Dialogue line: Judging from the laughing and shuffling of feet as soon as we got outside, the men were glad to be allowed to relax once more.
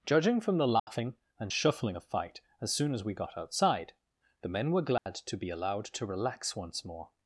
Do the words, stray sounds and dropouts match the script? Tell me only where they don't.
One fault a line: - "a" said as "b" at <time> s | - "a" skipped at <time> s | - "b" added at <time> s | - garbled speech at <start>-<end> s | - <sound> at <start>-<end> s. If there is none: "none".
- dropout at 0.8-0.9 s
- "feet" said as "fight" at 2.0 s
- dropout at 5.0-5.1 s